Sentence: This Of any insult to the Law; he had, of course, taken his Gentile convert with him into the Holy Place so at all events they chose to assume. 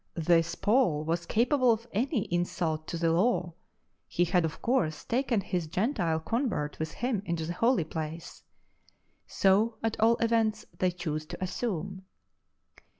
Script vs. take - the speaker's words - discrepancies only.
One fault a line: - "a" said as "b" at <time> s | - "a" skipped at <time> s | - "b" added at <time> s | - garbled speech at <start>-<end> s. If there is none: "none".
- "Paul was capable" added at 0.6 s